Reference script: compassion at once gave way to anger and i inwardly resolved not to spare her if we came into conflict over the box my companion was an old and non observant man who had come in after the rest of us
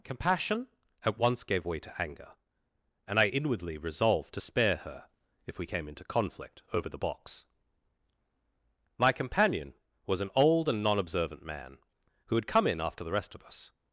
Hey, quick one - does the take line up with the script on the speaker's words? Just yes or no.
no